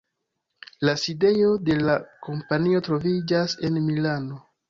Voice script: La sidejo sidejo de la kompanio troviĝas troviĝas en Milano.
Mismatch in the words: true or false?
true